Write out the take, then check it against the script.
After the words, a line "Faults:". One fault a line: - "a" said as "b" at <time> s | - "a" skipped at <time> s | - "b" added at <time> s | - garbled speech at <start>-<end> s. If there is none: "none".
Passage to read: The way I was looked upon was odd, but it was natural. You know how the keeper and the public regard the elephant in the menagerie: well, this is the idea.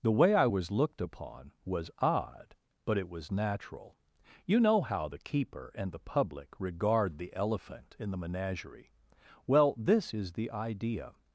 The way I was looked upon was odd, but it was natural. You know how the keeper and the public regard the elephant in the menagerie: well, this is the idea.
Faults:
none